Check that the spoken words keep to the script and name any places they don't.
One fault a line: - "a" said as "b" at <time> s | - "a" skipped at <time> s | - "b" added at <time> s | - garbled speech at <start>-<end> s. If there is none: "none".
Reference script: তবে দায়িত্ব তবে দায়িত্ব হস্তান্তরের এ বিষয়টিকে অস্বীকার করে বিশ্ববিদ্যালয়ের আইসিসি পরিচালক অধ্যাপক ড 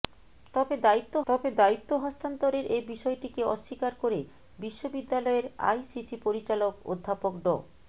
none